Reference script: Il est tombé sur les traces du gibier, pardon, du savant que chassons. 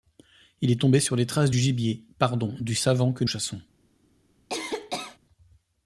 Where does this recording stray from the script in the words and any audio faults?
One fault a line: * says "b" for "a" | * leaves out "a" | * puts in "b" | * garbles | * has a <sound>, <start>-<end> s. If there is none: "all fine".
* has a cough, 4.5-5.2 s